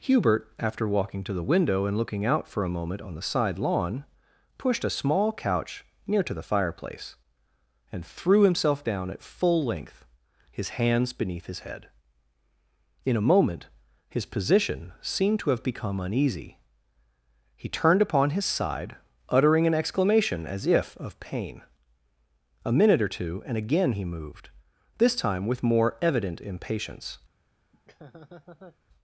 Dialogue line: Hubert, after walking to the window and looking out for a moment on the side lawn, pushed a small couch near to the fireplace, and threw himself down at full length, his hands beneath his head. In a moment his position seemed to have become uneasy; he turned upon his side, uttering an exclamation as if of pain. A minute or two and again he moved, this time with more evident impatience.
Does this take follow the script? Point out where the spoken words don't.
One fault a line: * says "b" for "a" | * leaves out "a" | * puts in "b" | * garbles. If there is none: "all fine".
all fine